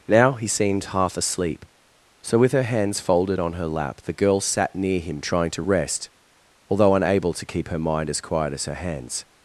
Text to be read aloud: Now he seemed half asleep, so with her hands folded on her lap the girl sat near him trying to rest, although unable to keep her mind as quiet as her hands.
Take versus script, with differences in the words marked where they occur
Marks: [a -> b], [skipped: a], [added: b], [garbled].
Now he seemed half asleep, so with her hands folded on her lap the girl sat near him trying to rest, although unable to keep her mind as quiet as her hands.